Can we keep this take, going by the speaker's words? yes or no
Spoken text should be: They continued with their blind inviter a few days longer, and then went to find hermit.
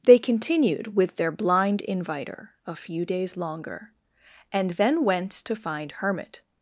yes